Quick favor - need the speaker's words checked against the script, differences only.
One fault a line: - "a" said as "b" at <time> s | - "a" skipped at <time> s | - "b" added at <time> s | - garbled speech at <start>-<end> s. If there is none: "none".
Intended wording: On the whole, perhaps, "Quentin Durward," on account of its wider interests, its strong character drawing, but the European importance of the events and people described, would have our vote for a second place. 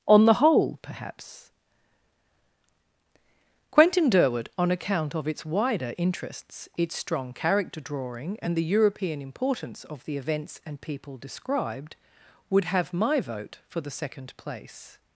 - "but" said as "and" at 8.4 s
- "our" said as "my" at 12.9 s
- "a" said as "the" at 13.8 s